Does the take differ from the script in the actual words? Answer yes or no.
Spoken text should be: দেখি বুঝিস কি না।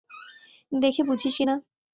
no